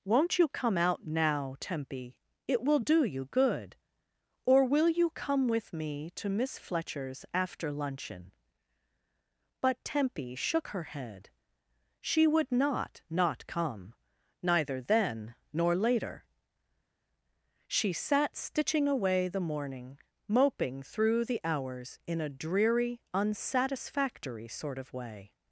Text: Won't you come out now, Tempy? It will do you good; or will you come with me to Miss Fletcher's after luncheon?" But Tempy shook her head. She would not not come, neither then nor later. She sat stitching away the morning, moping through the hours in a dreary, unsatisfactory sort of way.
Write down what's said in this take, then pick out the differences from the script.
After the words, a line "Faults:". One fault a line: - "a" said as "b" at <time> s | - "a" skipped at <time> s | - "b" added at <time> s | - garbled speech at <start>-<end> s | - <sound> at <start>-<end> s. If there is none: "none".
Won't you come out now, Tempy? It will do you good; or will you come with me to Miss Fletcher's after luncheon?" But Tempy shook her head. She would not not come, neither then nor later. She sat stitching away the morning, moping through the hours in a dreary, unsatisfactory sort of way.
Faults:
none